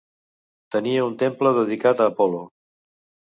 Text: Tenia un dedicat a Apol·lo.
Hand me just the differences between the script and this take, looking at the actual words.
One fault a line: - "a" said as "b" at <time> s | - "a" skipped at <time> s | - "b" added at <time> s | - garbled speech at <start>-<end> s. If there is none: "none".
- "temple" added at 1.2 s